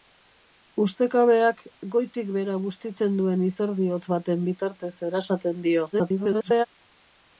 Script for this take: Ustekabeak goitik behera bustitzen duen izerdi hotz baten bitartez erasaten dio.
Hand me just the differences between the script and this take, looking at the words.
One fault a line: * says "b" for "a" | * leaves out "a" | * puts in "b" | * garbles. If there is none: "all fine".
* garbles